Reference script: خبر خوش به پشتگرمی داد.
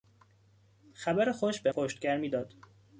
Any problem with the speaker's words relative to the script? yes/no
no